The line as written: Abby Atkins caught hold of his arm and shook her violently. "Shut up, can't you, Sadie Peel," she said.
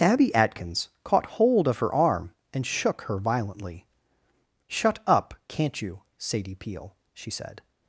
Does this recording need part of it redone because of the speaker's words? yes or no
yes